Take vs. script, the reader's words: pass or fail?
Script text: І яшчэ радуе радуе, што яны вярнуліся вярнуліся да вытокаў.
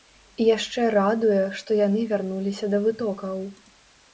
fail